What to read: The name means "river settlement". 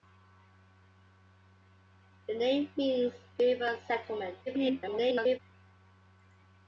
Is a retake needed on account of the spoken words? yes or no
yes